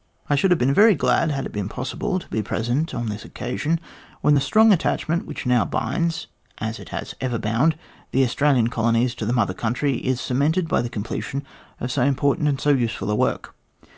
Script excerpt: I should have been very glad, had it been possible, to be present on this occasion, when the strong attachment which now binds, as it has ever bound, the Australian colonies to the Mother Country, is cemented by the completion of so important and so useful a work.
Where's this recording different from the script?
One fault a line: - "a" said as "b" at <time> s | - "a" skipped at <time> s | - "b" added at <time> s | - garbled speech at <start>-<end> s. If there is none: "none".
none